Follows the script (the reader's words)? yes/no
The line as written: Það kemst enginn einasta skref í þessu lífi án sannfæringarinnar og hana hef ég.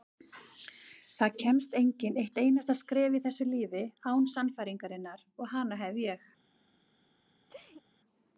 no